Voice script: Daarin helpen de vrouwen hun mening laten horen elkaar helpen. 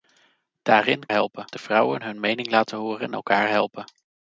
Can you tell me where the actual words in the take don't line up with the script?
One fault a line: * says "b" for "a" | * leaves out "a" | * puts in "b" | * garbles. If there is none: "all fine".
all fine